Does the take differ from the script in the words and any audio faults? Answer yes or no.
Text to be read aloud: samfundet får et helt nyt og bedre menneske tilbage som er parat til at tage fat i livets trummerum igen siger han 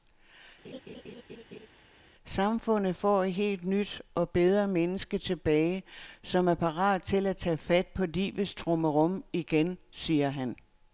yes